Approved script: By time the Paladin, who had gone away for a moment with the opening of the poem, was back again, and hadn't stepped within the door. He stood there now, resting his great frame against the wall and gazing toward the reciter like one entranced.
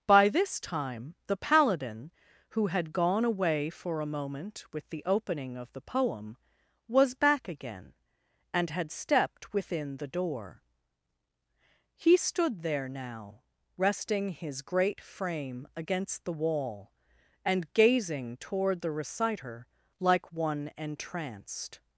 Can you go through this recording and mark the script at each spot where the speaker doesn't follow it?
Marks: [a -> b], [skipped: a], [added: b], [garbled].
By [added: this] time the Paladin, who had gone away for a moment with the opening of the poem, was back again, and [hadn't -> had] stepped within the door. He stood there now, resting his great frame against the wall and gazing toward the reciter like one entranced.